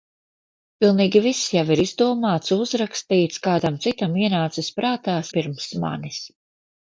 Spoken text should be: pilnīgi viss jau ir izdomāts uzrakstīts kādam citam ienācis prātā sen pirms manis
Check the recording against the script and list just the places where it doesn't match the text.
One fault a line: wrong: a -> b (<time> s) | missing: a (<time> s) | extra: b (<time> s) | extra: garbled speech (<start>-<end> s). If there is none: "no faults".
missing: sen (5.2 s)